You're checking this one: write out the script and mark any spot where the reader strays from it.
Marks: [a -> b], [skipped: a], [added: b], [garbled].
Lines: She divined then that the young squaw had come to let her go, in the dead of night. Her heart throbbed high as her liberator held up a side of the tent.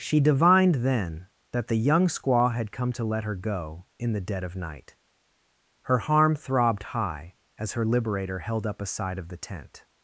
She divined then that the young squaw had come to let her go, in the dead of night. Her [heart -> harm] throbbed high as her liberator held up a side of the tent.